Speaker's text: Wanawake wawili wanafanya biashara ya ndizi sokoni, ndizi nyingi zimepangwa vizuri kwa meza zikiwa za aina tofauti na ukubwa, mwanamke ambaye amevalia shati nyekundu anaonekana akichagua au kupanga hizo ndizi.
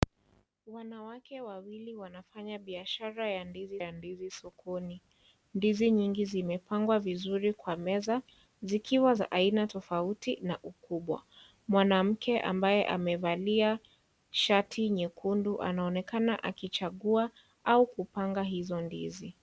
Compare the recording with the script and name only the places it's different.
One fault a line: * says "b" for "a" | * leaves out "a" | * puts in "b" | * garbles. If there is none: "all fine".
* puts in "ya ndizi"